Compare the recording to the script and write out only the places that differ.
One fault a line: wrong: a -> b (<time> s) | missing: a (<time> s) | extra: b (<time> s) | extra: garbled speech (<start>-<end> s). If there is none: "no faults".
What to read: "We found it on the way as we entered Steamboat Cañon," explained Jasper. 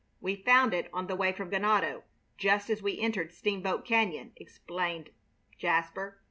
extra: from Ganado just (1.3 s)